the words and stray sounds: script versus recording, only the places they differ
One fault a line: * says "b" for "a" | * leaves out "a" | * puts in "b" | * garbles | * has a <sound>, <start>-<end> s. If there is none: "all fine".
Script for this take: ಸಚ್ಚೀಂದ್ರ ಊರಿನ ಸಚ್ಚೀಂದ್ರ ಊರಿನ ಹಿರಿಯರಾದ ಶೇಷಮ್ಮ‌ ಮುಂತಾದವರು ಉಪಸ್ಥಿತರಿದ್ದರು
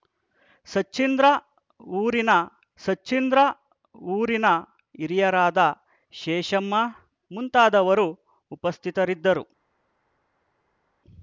all fine